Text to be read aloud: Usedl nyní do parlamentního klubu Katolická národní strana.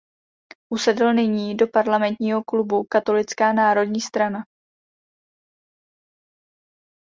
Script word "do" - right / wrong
right